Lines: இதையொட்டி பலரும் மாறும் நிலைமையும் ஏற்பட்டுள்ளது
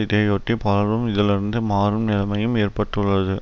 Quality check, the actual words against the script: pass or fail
fail